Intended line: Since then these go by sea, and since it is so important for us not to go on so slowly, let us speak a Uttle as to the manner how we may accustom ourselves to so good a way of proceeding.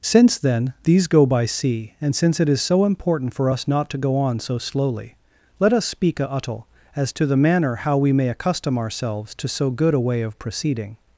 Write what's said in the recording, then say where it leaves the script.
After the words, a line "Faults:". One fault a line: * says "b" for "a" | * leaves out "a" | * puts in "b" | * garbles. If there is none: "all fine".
Since then these go by sea, and since it is so important for us not to go on so slowly, let us speak a Uttle as to the manner how we may accustom ourselves to so good a way of proceeding.
Faults:
all fine